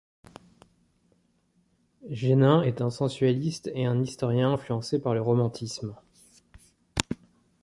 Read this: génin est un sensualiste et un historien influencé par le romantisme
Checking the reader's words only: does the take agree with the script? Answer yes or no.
yes